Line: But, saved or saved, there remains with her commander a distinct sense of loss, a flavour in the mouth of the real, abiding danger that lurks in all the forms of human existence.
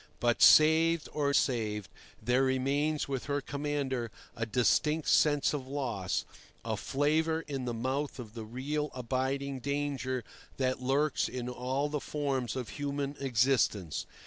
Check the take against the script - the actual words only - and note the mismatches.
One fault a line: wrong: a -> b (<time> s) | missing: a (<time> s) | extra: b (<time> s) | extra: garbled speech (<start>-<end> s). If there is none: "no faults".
no faults